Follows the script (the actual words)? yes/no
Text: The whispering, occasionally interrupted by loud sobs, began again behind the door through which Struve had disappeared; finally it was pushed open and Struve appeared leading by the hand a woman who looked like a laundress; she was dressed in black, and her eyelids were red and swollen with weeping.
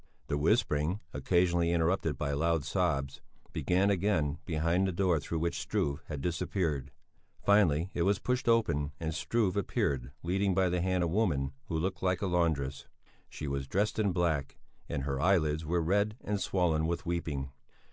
yes